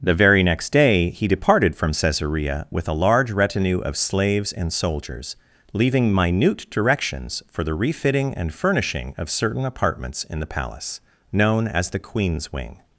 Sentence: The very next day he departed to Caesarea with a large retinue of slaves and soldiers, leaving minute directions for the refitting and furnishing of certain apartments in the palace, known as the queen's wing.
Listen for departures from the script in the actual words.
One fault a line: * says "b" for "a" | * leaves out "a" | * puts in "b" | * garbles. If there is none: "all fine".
* says "from" for "to"